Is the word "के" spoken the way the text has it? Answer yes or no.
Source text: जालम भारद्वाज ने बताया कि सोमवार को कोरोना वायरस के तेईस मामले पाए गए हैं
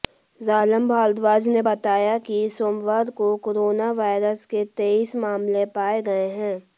yes